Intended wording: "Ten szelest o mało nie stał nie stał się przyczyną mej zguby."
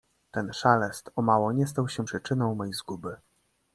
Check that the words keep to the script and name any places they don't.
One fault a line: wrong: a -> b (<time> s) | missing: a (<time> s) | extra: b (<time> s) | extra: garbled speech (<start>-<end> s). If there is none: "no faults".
missing: nie stał (1.9 s)